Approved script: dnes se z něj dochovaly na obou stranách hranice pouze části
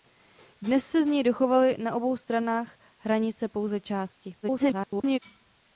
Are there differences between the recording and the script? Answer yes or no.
yes